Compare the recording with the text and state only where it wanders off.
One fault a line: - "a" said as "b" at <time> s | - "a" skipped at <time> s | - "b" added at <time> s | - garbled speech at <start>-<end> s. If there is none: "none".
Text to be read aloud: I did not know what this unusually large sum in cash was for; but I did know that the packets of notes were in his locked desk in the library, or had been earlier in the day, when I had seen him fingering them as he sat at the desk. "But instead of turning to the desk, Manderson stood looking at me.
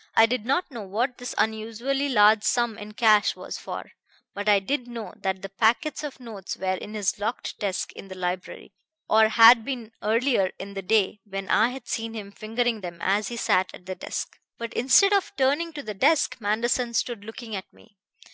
none